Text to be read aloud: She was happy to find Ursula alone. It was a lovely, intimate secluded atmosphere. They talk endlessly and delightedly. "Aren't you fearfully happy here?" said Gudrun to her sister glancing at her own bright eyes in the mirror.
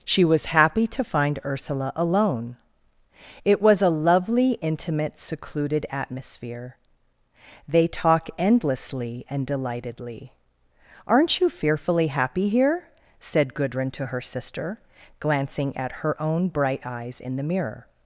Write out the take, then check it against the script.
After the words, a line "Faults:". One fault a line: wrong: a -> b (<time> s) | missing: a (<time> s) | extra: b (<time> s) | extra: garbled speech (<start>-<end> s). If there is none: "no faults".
She was happy to find Ursula alone. It was a lovely, intimate secluded atmosphere. They talk endlessly and delightedly. "Aren't you fearfully happy here?" said Gudrun to her sister glancing at her own bright eyes in the mirror.
Faults:
no faults